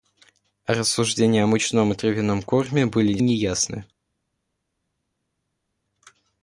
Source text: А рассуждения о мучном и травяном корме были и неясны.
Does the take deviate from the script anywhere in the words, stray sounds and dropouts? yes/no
no